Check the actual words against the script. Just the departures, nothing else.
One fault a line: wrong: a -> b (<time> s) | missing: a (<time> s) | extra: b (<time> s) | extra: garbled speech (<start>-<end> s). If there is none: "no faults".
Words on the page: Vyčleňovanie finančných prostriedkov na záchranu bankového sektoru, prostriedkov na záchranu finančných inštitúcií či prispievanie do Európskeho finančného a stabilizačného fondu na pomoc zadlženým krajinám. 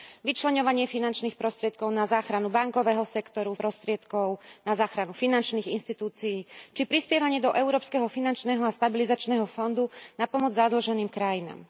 no faults